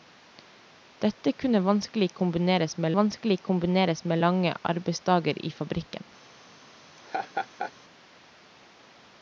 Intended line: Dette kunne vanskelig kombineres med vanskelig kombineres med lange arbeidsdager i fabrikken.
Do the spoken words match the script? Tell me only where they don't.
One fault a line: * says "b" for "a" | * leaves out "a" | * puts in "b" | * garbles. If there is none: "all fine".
all fine